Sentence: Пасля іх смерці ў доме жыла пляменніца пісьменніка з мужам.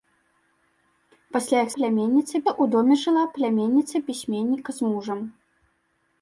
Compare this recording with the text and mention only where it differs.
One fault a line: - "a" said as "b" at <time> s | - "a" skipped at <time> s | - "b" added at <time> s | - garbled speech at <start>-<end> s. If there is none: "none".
- "смерці" said as "пляменніца" at 1.8 s